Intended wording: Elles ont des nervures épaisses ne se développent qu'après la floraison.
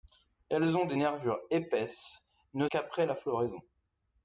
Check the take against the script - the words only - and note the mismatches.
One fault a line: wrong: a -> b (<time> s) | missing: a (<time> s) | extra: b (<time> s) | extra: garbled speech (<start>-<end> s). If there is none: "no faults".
missing: se développent (2.7 s)